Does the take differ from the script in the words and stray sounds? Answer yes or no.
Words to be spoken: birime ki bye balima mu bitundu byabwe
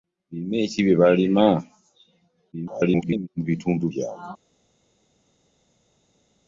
yes